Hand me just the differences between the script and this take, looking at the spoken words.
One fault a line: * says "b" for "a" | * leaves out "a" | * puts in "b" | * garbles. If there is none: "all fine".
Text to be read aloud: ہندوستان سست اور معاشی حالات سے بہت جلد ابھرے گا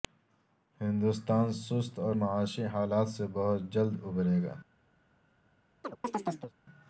all fine